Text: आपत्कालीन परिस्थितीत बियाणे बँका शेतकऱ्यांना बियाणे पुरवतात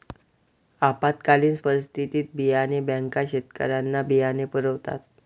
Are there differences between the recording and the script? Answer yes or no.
no